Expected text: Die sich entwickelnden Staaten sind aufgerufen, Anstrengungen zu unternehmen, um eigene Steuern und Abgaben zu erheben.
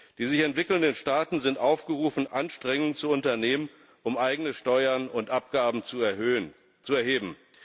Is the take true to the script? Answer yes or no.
yes